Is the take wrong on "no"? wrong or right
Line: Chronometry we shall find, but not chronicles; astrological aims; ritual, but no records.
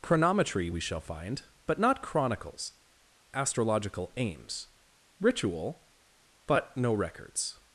right